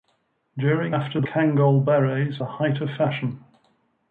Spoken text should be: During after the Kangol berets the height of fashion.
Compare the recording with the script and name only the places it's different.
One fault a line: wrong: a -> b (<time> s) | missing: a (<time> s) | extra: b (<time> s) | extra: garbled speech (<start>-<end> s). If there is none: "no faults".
no faults